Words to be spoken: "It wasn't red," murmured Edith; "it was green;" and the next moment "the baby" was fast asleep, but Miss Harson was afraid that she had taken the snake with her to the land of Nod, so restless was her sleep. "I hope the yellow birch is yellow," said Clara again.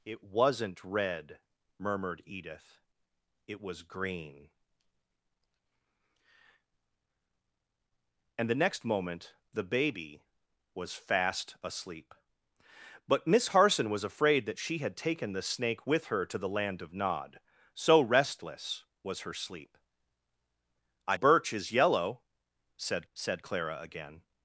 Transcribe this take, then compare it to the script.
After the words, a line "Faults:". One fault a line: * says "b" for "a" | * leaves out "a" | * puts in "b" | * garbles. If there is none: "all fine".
"It wasn't red," murmured Edith; "it was green;" and the next moment "the baby" was fast asleep, but Miss Harson was afraid that she had taken the snake with her to the land of Nod, so restless was her sleep. "I birch is yellow," said said Clara again.
Faults:
* leaves out "hope the yellow"
* puts in "said"